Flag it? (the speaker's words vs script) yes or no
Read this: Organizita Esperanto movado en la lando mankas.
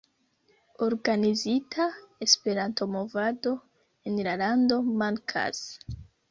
no